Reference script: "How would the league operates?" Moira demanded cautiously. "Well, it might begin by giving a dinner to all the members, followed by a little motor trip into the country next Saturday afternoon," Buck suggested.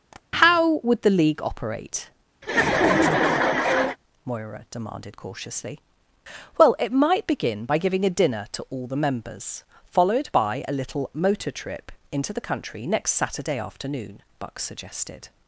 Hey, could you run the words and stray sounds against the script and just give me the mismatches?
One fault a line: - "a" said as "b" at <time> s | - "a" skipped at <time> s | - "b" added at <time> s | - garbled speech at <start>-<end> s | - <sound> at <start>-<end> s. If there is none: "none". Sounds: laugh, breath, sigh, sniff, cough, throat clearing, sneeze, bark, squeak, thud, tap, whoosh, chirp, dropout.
- tap at 0.1-0.2 s
- "operates" said as "operate" at 1.4 s
- laugh at 2.4-4.0 s